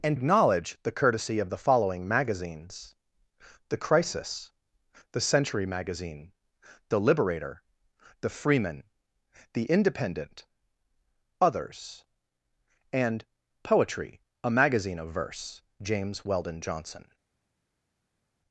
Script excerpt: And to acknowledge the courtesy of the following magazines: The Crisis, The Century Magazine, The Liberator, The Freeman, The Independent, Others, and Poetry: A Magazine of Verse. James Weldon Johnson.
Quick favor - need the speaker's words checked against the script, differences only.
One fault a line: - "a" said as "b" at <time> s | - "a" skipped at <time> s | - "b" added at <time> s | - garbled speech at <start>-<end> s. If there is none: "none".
- "to" skipped at 0.2 s